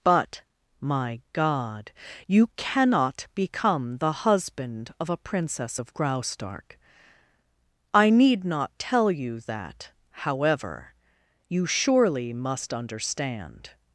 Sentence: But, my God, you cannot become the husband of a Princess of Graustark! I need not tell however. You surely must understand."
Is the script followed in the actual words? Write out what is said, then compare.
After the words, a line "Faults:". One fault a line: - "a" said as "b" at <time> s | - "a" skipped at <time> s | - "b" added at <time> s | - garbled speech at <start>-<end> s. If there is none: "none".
But, my God, you cannot become the husband of a Princess of Graustark! I need not tell you that, however. You surely must understand."
Faults:
- "you that" added at 9.1 s